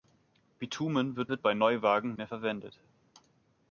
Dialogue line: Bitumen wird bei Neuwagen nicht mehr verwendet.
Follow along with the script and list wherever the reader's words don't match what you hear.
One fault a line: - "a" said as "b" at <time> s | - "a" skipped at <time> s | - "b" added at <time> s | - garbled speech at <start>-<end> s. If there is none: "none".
- "wird" added at 1.3 s
- "nicht" skipped at 2.2 s